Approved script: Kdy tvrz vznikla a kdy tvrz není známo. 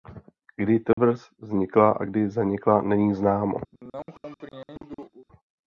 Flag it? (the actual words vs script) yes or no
yes